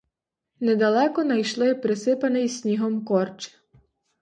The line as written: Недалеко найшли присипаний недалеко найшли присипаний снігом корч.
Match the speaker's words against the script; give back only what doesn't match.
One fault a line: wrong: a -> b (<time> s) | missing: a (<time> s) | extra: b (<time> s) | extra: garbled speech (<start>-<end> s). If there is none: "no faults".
missing: недалеко найшли присипаний (2.5 s)